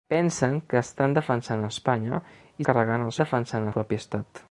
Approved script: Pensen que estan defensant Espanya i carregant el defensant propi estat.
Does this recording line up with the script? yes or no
yes